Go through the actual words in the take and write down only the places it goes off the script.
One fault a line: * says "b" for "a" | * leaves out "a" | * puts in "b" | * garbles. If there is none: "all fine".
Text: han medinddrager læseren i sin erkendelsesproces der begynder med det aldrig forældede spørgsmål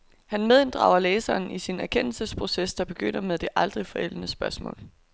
all fine